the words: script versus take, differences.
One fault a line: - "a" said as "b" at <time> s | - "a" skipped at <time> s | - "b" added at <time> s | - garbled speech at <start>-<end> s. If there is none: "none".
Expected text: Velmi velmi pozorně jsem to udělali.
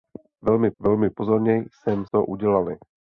none